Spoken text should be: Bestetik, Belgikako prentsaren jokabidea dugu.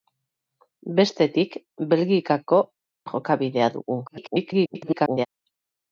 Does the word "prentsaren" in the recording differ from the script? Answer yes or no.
yes